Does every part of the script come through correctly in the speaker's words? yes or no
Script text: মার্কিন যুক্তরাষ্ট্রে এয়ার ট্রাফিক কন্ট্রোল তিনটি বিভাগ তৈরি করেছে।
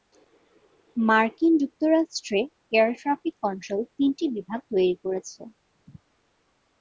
yes